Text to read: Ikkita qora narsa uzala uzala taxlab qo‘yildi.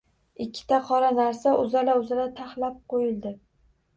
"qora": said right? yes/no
yes